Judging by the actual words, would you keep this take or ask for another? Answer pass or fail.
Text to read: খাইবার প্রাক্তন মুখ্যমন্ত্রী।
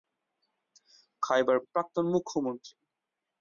pass